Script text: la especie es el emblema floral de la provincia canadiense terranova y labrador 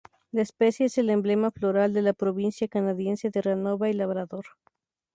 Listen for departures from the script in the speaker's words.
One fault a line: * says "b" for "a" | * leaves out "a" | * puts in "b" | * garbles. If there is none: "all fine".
all fine